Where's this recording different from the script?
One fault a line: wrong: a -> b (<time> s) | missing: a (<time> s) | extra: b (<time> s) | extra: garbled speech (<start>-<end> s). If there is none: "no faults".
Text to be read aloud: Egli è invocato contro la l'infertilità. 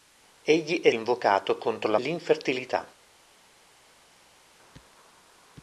no faults